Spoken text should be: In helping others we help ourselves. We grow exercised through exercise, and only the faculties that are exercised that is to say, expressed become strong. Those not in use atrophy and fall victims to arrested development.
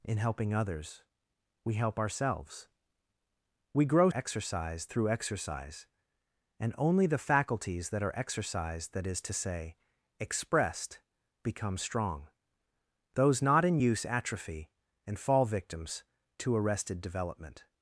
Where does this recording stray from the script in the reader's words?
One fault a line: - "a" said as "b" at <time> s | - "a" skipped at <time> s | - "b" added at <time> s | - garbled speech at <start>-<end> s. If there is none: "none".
none